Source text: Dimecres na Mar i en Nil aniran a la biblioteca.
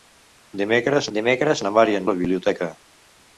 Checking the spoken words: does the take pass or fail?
fail